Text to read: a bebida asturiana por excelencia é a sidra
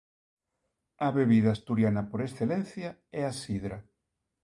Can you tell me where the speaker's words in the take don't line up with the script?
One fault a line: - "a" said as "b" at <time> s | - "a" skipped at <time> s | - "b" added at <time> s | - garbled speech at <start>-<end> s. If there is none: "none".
none